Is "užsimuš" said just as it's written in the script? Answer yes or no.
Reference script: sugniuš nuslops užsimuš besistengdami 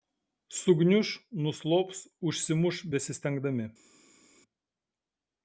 yes